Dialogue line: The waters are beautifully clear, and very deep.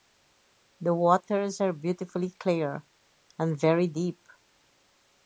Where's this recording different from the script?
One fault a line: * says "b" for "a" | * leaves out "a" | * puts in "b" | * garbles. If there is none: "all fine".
all fine